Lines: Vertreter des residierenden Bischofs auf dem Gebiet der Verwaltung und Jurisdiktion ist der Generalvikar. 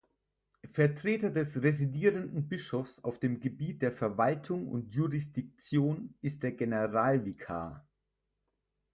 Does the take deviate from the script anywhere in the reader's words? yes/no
no